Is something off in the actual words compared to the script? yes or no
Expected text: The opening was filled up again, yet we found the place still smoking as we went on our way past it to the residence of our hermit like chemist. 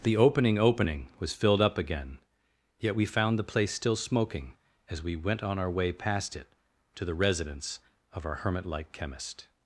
yes